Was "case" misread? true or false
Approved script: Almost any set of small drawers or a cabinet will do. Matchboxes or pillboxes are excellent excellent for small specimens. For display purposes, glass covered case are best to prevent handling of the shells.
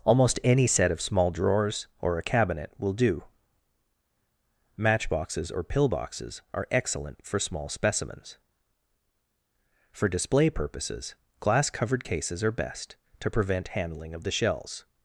true